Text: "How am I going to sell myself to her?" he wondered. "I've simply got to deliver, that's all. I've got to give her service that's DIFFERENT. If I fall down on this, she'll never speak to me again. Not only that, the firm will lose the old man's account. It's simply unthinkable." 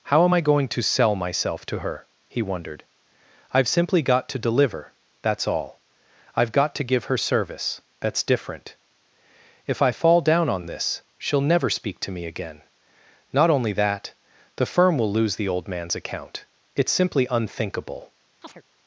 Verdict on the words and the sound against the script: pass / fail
fail